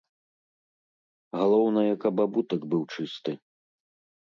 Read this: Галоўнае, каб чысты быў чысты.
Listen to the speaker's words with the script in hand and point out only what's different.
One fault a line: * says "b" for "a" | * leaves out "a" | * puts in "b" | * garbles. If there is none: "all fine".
* says "абутак" for "чысты"